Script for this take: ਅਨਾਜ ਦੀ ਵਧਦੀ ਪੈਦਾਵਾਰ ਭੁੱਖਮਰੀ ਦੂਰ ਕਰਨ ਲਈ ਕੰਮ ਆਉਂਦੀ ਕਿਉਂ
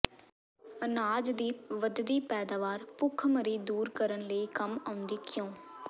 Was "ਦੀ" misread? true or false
false